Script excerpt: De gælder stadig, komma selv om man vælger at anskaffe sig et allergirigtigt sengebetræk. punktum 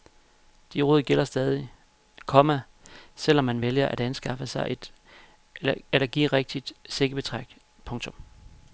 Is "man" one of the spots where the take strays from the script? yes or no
no